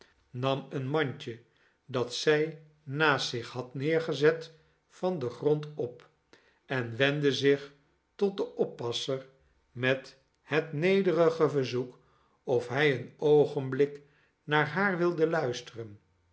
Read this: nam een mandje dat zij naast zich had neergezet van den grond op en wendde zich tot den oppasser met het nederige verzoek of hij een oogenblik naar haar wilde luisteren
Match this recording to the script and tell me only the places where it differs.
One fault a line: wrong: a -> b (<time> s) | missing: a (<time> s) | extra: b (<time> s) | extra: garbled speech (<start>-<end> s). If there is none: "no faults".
no faults